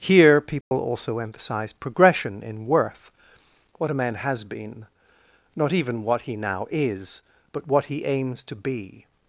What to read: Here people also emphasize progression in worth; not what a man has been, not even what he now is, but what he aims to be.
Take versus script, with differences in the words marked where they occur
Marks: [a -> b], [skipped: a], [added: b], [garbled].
Here people also emphasize progression in worth; [skipped: not] what a man has been, not even what he now is, but what he aims to be.